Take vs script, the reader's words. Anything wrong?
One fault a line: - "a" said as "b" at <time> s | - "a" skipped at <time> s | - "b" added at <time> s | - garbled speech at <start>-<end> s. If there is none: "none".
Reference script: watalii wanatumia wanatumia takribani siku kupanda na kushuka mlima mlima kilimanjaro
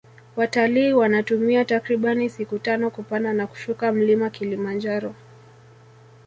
- "wanatumia" skipped at 1.6 s
- "tano" added at 2.6 s
- "mlima" skipped at 4.3 s